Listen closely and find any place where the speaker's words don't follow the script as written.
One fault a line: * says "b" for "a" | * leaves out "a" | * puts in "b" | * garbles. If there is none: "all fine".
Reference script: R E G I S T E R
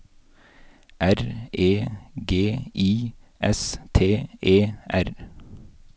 all fine